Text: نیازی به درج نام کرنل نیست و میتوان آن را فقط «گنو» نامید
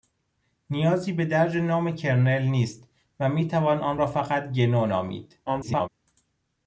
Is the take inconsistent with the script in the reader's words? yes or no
yes